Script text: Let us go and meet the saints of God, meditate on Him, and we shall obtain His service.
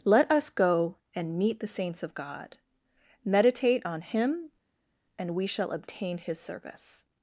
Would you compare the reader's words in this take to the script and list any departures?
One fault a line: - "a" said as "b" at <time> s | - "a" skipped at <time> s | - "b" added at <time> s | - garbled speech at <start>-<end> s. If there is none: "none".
none